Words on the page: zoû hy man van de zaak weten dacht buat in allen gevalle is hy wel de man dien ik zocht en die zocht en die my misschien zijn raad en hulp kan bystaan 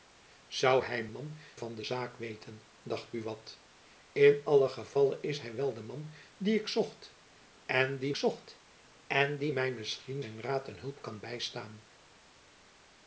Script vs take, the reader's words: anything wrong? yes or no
no